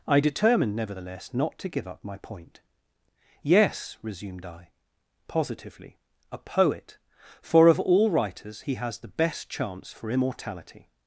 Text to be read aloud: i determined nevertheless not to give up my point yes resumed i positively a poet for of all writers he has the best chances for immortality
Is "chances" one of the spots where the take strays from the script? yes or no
yes